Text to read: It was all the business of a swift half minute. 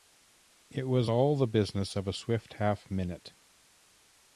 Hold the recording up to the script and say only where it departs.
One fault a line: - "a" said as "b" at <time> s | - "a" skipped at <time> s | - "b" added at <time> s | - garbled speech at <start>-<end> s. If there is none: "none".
none